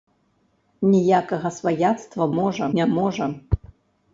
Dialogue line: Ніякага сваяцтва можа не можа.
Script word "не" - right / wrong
right